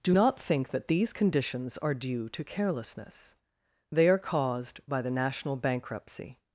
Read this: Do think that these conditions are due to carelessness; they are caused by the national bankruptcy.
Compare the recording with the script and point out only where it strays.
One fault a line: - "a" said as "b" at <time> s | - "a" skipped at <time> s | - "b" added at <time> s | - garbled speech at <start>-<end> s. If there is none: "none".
- "not" added at 0.1 s